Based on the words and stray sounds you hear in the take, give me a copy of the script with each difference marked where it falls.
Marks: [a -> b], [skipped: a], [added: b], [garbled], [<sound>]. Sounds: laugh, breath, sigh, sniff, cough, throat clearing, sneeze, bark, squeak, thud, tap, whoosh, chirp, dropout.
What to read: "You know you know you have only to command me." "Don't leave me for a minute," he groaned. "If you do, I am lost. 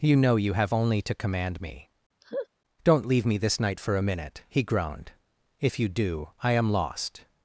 "You know you [skipped: know you] have only to command me." [laugh] "Don't leave me [added: this night] for a minute," he groaned. "If you do, I am lost.